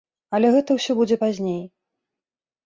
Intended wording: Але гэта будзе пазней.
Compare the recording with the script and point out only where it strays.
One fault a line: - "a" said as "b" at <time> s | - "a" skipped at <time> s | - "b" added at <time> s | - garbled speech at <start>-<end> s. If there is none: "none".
- "ўсё" added at 0.8 s